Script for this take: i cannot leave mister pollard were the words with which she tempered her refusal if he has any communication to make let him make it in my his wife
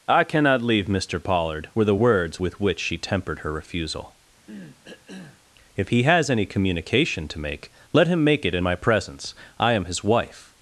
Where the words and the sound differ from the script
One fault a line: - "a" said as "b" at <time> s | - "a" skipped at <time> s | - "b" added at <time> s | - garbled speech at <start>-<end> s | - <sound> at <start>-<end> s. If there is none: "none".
- cough at 4.5-5.4 s
- "presence i am" added at 8.8 s